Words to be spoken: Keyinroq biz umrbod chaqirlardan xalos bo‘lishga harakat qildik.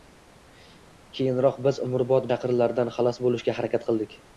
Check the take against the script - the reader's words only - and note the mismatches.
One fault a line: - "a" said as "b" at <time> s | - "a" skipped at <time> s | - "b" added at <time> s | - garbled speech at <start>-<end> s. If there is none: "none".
none